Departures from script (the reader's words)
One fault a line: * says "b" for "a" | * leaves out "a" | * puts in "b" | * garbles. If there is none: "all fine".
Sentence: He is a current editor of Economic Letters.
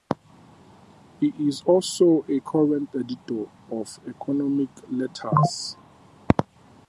* puts in "also"